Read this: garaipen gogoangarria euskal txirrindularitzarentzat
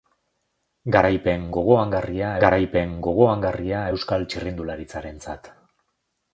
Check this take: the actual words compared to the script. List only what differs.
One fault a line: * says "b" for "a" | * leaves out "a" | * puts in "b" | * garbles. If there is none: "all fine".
* puts in "garaipen gogoangarria"